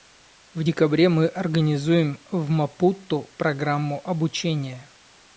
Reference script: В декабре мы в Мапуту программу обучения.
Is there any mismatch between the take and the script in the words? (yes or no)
yes